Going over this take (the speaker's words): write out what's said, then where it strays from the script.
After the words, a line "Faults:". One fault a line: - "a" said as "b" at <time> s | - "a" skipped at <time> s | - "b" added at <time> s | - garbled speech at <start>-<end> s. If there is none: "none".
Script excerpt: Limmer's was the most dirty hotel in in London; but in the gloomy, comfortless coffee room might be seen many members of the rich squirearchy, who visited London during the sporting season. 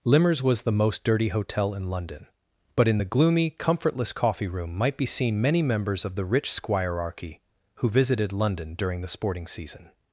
Limmer's was the most dirty hotel in London; but in the gloomy, comfortless coffee room might be seen many members of the rich squirearchy, who visited London during the sporting season.
Faults:
- "in" skipped at 1.9 s